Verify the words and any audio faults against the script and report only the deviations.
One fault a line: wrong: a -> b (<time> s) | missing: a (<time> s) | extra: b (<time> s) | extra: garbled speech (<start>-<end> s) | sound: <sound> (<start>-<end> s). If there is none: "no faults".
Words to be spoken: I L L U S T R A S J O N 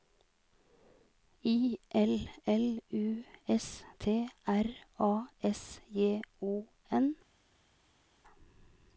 no faults